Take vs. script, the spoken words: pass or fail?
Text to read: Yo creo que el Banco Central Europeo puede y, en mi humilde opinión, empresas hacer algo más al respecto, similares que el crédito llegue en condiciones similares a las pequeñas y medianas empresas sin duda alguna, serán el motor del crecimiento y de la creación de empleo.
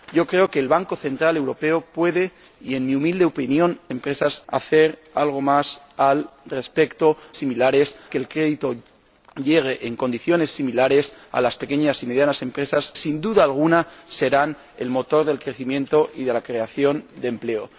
pass